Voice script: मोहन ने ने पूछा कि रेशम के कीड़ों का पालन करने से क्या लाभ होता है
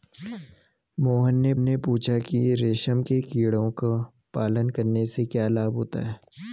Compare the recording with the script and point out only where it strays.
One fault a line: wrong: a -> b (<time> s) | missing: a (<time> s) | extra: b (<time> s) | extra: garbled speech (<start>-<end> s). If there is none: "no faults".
no faults